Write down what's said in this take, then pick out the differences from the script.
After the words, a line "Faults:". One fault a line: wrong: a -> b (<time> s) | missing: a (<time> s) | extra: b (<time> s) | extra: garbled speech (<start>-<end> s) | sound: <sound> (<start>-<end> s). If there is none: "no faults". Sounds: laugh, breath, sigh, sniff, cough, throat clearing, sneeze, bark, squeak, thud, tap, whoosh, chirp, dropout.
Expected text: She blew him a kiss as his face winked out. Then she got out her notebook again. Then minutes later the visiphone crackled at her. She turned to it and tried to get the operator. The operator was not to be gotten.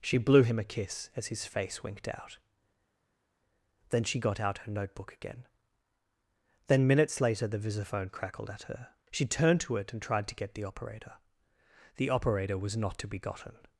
She blew him a kiss as his face winked out. Then she got out her notebook again. Then minutes later the visiphone crackled at her. She turned to it and tried to get the operator. The operator was not to be gotten.
Faults:
no faults